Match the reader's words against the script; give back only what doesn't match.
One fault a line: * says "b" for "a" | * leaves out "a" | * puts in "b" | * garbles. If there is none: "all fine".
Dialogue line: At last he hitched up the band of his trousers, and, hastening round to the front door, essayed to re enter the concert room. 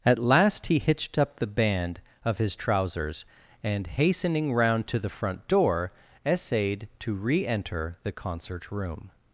all fine